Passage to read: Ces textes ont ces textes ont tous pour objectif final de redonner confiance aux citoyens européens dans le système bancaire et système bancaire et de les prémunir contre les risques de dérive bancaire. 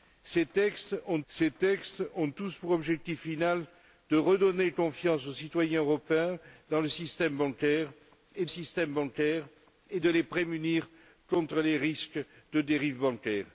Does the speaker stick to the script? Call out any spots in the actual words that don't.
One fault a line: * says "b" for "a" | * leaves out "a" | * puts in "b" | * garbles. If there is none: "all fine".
all fine